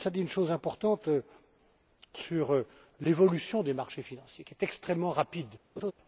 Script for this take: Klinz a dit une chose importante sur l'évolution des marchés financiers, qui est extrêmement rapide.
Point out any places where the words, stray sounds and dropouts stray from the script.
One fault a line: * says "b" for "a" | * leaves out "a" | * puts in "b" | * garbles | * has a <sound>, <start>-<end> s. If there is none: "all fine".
* has a laugh, 5.8-5.9 s